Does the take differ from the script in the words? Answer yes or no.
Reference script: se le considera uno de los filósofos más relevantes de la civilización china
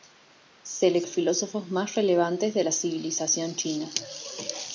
yes